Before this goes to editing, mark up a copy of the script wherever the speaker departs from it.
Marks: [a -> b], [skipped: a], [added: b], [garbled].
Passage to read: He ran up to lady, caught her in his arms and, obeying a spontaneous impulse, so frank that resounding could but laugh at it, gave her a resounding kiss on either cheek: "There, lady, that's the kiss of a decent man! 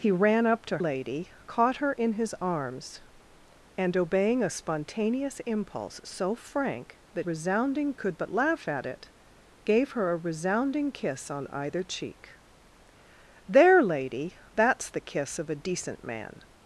He ran up to lady, caught her in his arms and, obeying a spontaneous impulse, so frank that resounding could but laugh at it, gave her a resounding kiss on either cheek: "There, lady, that's the kiss of a decent man!